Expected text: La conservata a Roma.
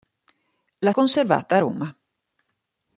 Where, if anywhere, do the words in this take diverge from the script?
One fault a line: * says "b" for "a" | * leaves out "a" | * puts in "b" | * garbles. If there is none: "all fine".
all fine